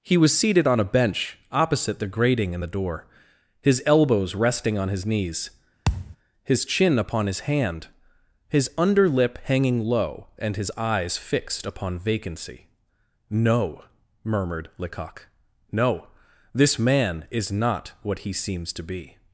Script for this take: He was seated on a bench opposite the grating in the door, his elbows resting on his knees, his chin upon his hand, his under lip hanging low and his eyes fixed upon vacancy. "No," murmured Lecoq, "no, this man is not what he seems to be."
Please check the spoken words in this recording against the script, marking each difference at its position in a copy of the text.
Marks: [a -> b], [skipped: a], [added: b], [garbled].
He was seated on a bench opposite the grating in the door, his elbows resting on his knees, his chin upon his hand, his under lip hanging low and his eyes fixed upon vacancy. "No," murmured Lecoq, "no, this man is not what he seems to be."